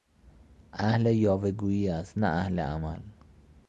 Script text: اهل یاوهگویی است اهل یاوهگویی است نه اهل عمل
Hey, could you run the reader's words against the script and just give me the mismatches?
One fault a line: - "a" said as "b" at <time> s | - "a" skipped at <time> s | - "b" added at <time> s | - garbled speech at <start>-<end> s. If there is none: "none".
- "اهل یاوهگویی است" skipped at 2.2 s